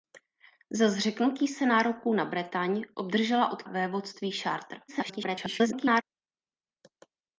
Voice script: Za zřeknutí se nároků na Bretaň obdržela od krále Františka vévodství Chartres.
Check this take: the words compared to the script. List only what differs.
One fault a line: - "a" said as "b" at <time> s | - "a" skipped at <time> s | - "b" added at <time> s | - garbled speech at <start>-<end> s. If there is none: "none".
- "krále Františka" skipped at 3.6 s
- garbled speech at 4.9-6.0 s